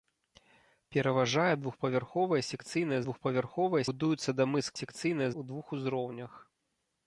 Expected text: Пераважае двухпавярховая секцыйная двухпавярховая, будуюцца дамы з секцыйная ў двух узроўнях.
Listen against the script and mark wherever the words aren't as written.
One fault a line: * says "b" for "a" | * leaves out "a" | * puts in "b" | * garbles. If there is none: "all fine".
all fine